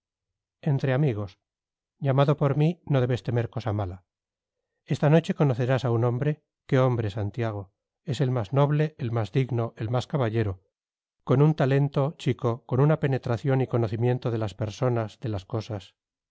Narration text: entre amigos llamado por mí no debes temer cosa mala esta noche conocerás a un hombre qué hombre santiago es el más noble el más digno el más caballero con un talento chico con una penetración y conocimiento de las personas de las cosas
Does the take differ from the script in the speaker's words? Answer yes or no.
no